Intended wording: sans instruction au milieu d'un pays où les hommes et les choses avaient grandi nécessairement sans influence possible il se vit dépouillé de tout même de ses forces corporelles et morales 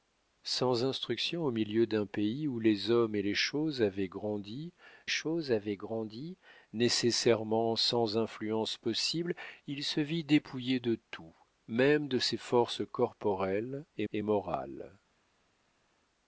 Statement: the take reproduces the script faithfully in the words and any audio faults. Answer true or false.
false